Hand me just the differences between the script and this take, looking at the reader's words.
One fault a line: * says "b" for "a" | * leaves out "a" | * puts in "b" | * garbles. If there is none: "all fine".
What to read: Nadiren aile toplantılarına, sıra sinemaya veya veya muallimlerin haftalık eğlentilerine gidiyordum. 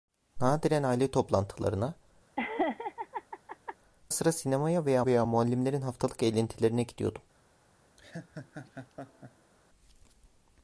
all fine